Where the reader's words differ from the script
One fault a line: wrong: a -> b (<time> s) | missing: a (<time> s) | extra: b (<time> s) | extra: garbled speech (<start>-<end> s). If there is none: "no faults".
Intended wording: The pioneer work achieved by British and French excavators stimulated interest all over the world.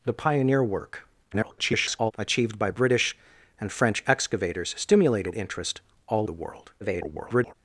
extra: garbled speech (1.3-2.1 s)
missing: over (6.3 s)
extra: garbled speech (6.8-7.5 s)